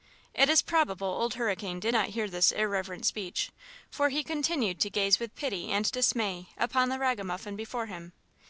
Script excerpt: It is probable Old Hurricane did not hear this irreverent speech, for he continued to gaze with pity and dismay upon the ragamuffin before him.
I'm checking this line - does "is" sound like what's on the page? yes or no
yes